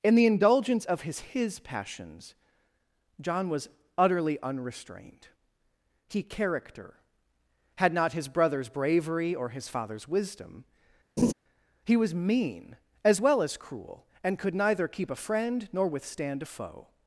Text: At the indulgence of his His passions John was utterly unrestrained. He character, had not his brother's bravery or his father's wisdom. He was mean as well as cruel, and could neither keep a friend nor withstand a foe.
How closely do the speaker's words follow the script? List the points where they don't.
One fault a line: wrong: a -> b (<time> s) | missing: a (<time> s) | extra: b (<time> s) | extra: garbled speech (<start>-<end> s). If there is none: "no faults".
wrong: At -> In (0.0 s)